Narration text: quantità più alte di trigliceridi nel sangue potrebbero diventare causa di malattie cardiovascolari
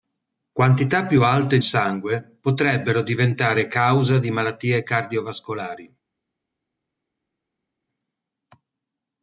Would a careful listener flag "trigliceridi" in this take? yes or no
yes